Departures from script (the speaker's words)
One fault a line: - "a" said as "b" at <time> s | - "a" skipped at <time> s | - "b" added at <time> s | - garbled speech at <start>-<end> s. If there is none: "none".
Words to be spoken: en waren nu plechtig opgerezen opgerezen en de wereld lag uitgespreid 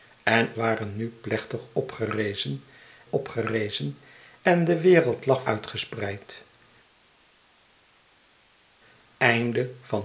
none